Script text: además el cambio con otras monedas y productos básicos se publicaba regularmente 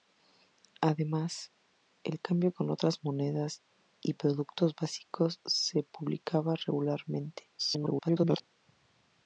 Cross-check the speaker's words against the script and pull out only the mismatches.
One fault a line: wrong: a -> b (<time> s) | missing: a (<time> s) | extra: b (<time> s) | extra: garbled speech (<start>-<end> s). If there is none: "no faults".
extra: garbled speech (7.6-8.4 s)